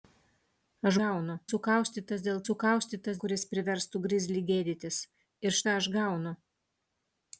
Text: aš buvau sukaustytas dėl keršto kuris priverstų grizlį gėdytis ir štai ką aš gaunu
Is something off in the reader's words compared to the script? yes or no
yes